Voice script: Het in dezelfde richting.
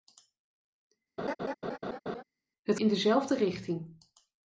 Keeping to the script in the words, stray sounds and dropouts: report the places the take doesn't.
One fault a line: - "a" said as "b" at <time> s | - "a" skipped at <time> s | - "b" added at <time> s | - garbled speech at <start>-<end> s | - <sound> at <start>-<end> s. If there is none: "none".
- laugh at 1.2-2.2 s